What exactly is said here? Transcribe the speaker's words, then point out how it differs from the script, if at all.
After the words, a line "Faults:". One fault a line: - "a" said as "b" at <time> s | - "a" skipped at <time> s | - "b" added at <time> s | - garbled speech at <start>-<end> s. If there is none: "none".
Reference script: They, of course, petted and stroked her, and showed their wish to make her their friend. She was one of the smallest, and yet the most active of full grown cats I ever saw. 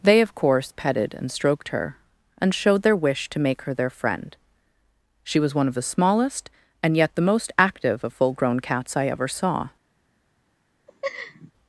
They, of course, petted and stroked her, and showed their wish to make her their friend. She was one of the smallest, and yet the most active of full grown cats I ever saw.
Faults:
none